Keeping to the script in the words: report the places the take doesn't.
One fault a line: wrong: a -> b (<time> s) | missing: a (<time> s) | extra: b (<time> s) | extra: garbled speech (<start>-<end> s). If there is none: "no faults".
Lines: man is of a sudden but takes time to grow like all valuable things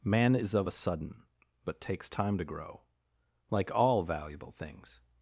no faults